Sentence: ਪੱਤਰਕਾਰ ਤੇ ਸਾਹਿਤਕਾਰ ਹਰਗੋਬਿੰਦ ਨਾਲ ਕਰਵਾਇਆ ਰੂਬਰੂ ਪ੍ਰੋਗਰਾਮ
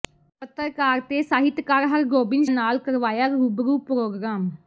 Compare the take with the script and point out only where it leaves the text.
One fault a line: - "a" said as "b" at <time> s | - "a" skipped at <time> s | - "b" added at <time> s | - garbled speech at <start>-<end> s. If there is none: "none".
none